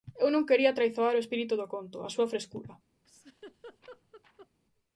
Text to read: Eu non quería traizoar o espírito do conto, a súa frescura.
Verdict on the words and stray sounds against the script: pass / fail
fail